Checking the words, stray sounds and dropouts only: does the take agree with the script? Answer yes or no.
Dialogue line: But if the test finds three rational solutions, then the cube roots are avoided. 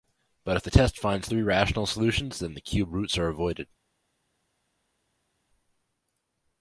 yes